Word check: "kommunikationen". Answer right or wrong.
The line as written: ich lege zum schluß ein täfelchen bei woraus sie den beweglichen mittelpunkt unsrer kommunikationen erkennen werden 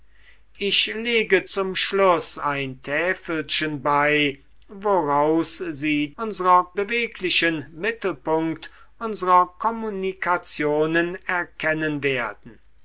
right